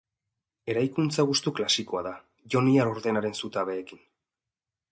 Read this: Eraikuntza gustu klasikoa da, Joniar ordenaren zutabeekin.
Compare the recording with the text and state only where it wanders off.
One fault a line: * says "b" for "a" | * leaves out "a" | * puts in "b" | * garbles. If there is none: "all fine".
all fine